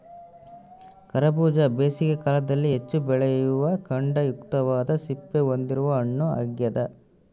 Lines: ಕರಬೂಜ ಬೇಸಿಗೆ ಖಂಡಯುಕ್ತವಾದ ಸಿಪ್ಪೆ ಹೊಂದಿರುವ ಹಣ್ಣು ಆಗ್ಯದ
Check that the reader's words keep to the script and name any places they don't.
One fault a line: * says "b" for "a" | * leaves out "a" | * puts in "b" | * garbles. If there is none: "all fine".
* puts in "ಕಾಲದಲ್ಲಿ ಹೆಚ್ಚು ಬೆಳೆಯುವ"